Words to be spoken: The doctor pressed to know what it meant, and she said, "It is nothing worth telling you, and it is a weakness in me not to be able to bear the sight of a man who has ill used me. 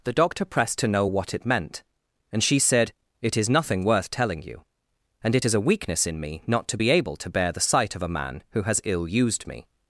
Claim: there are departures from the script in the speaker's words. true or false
false